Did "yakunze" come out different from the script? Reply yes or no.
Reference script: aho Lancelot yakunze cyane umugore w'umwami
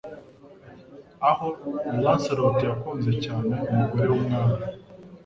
no